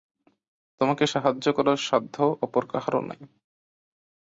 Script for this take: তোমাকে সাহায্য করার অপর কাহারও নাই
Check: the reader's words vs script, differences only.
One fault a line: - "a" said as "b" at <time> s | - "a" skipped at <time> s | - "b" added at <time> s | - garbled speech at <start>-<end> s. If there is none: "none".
- "সাধ্য" added at 1.9 s